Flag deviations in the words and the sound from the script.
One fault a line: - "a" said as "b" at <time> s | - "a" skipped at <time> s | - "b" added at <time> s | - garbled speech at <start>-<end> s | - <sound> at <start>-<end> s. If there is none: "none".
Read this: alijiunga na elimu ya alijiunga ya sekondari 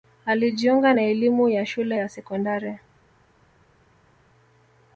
- "alijiunga" said as "shule" at 1.6 s